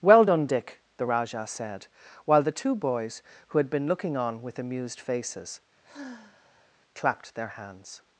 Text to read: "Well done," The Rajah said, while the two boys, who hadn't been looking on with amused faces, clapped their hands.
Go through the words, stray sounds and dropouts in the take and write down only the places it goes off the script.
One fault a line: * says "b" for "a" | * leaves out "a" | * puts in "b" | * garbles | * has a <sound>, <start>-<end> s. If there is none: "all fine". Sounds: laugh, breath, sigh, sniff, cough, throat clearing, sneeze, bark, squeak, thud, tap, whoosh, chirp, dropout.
* puts in "Dick"
* says "had" for "hadn't"
* has a sigh, 5.8-6.7 s